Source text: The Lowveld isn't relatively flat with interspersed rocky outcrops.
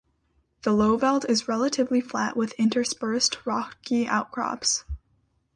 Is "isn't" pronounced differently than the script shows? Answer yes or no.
yes